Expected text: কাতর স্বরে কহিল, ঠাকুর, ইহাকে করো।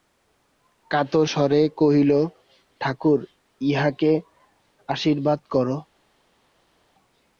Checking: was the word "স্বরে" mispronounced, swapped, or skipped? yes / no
no